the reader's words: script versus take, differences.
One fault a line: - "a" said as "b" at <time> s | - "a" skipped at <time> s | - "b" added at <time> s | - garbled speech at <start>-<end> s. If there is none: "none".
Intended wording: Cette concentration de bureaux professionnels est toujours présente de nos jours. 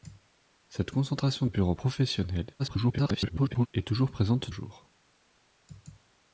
- "de" skipped at 1.4 s
- garbled speech at 2.6-3.7 s
- "de nos" skipped at 4.5 s